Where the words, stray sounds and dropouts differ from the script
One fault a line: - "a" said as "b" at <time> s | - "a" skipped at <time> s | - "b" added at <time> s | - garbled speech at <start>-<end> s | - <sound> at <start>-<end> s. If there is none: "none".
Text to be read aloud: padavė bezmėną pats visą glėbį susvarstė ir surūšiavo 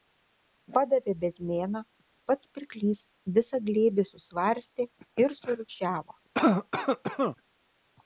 - "pirklys" added at 2.5 s
- cough at 6.3-7.4 s